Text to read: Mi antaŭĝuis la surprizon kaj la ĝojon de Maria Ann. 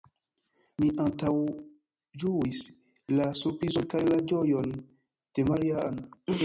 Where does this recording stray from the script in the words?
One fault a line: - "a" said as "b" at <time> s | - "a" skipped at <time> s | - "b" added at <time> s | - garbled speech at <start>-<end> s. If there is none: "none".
none